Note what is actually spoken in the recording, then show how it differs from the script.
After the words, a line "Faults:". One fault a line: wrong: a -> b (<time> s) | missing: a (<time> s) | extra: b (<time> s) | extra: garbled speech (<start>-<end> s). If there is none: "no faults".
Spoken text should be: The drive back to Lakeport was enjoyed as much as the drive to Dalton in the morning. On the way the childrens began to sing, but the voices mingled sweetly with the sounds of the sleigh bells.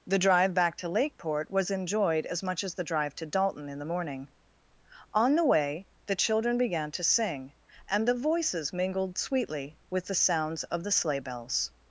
The drive back to Lakeport was enjoyed as much as the drive to Dalton in the morning. On the way the children began to sing, and the voices mingled sweetly with the sounds of the sleigh bells.
Faults:
wrong: childrens -> children (6.2 s)
wrong: but -> and (7.9 s)